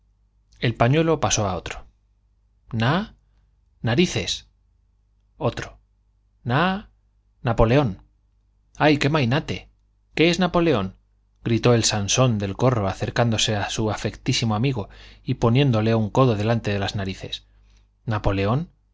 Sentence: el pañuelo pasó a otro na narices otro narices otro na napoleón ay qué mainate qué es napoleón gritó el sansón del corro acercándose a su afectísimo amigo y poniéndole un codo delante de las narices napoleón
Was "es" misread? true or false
false